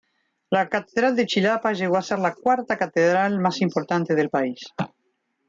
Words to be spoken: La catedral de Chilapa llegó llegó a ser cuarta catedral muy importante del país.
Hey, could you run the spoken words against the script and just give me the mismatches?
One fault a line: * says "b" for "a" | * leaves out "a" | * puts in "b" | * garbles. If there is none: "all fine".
* leaves out "llegó"
* puts in "la"
* says "más" for "muy"